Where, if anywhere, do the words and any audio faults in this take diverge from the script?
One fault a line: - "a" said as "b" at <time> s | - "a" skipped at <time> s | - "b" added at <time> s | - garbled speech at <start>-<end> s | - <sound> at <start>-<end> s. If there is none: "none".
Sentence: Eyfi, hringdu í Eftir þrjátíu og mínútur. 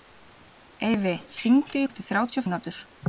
none